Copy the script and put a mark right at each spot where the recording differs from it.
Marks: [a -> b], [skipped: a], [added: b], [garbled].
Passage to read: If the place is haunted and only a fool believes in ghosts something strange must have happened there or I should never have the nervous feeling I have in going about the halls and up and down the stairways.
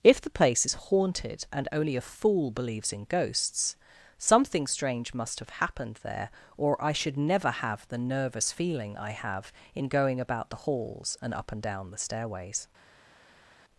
If the place is haunted and only a fool believes in ghosts something strange must have happened there or I should never have the nervous feeling I have in going about the halls and up and down the stairways.